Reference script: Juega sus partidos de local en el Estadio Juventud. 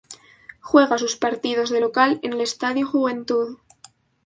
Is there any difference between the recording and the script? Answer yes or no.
no